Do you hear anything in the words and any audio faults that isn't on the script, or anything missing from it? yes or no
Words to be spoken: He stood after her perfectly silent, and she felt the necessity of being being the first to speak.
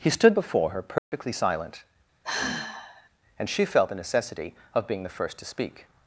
yes